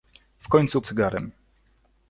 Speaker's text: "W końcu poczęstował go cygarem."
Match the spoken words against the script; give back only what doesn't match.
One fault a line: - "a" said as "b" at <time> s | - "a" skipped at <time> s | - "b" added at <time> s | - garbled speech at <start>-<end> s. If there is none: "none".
- "poczęstował go" skipped at 0.8 s